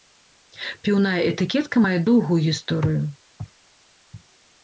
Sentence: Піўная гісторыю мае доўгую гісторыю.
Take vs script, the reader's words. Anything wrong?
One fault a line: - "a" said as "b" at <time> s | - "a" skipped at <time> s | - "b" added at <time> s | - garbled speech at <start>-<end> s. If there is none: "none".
- "гісторыю" said as "этыкетка" at 1.3 s